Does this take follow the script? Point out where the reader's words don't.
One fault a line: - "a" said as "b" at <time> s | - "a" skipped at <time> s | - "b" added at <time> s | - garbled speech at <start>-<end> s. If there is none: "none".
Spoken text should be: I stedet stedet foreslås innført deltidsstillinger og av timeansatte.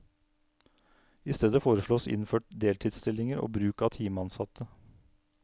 - "stedet" skipped at 1.6 s
- "bruk" added at 3.6 s